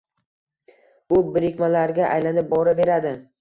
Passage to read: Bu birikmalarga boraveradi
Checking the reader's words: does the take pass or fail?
fail